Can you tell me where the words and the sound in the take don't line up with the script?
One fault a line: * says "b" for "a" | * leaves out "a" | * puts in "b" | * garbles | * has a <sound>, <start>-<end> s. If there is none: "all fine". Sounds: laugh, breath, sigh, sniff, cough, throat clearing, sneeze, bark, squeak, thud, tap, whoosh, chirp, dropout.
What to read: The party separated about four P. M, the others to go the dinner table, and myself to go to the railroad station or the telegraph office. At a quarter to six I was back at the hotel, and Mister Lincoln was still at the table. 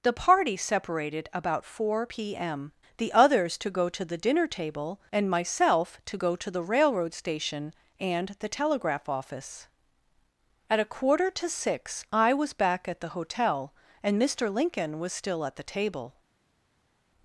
* puts in "to"
* says "and" for "or"